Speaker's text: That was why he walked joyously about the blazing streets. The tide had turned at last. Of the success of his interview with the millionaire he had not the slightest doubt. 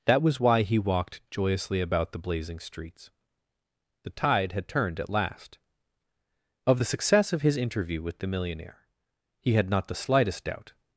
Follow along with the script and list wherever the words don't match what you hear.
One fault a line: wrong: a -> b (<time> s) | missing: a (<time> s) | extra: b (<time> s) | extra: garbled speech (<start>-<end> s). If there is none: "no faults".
no faults